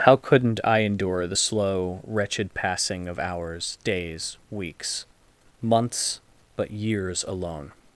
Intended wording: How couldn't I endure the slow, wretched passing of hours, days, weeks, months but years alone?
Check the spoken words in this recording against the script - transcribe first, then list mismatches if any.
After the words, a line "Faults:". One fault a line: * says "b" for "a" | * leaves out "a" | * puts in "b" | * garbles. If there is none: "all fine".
How couldn't I endure the slow, wretched passing of hours, days, weeks, months but years alone?
Faults:
all fine